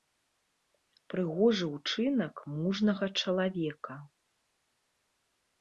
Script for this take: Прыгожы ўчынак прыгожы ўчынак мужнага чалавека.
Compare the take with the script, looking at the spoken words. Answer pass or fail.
fail